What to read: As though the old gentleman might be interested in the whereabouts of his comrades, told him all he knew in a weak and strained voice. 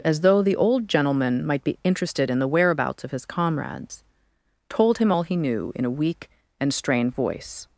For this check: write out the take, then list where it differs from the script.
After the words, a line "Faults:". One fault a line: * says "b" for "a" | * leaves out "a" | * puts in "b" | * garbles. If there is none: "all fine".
As though the old gentleman might be interested in the whereabouts of his comrades, told him all he knew in a weak and strained voice.
Faults:
all fine